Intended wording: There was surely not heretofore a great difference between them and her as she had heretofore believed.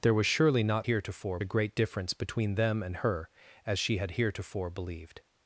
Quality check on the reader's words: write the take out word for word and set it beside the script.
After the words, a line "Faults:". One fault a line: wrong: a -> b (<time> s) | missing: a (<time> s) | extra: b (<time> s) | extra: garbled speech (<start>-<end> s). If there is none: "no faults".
There was surely not heretofore a great difference between them and her as she had heretofore believed.
Faults:
no faults